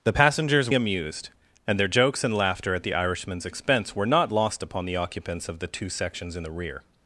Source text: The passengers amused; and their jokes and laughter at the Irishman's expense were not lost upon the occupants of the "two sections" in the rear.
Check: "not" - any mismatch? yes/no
no